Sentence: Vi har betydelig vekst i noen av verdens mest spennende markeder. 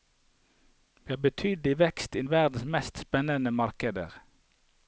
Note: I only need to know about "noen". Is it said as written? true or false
false